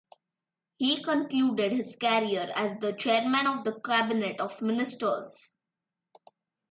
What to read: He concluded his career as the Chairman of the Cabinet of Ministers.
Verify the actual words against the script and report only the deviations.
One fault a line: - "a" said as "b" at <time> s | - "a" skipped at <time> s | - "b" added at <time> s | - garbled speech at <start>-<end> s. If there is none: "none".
none